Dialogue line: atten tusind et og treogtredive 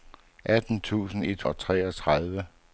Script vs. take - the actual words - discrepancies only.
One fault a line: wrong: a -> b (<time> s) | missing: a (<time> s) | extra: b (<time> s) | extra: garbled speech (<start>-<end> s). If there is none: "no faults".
no faults